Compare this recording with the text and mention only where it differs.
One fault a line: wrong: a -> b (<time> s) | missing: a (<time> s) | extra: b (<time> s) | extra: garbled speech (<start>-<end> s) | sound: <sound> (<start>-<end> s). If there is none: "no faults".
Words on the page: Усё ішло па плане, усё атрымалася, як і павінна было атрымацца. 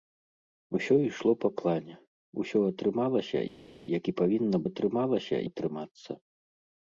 wrong: было -> атрымалася (4.7 s)